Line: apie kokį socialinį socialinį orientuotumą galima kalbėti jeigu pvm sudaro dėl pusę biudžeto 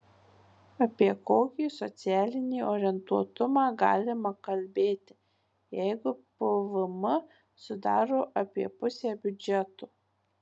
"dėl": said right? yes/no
no